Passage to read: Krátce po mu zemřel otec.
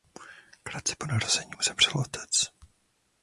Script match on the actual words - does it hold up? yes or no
no